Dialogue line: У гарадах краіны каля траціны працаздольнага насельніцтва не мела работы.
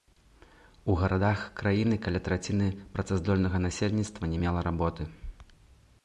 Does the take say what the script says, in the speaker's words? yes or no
yes